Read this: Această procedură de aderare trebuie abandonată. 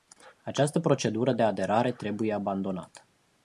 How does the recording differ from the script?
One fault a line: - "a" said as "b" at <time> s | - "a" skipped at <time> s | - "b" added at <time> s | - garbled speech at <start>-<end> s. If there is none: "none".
none